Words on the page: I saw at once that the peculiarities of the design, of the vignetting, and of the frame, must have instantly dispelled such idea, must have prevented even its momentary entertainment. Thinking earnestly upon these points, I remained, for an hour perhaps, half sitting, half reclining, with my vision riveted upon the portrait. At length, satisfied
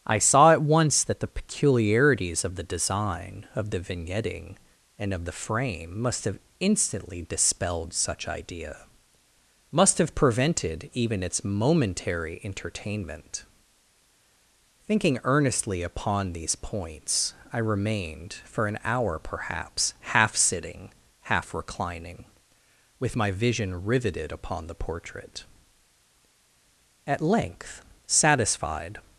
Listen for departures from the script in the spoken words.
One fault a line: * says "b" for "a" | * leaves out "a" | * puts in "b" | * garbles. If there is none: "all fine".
all fine